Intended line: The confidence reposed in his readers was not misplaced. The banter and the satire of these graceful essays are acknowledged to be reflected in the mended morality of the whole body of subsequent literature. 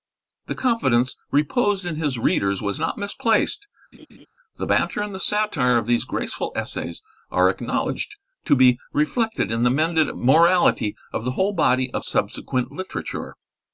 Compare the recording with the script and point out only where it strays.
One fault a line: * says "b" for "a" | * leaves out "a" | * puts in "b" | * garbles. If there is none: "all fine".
all fine